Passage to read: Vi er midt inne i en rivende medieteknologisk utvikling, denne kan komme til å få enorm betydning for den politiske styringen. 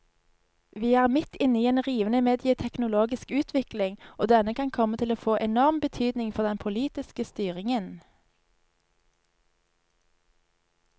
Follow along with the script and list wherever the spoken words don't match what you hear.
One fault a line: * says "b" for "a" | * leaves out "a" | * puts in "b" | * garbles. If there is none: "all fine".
* puts in "og"